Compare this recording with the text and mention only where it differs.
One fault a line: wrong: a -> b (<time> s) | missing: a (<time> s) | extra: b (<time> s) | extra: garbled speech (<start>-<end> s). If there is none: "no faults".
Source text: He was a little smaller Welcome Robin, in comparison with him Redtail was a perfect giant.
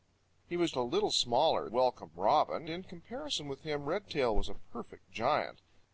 no faults